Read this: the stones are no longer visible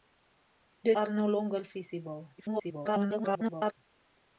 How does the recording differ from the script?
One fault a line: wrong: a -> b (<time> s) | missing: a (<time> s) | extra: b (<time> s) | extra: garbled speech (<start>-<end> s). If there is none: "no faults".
missing: stones (0.9 s)
extra: garbled speech (2.4-3.7 s)